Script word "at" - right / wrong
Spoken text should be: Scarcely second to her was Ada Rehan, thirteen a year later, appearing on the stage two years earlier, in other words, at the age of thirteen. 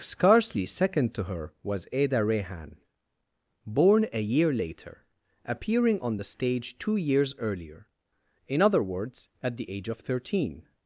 right